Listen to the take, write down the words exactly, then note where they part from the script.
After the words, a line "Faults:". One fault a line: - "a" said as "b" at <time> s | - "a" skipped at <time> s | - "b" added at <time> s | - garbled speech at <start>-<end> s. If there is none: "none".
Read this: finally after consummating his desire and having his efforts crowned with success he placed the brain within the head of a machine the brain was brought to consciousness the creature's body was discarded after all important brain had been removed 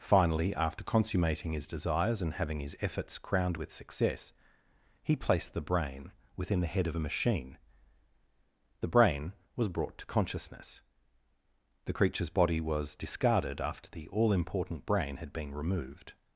finally after consummating his desires and having his efforts crowned with success he placed the brain within the head of a machine the brain was brought to consciousness the creature's body was discarded after the all important brain had been removed
Faults:
- "desire" said as "desires" at 1.7 s
- "the" added at 13.9 s